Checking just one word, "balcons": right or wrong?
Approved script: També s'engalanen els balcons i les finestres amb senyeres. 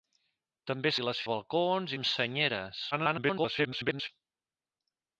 wrong